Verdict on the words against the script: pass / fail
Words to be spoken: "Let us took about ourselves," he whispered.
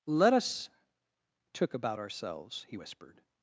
pass